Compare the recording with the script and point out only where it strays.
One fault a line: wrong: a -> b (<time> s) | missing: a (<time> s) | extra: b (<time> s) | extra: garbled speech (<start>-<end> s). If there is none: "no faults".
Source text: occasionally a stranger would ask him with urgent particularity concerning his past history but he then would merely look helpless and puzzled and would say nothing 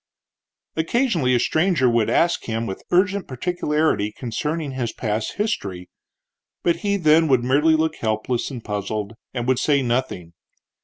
no faults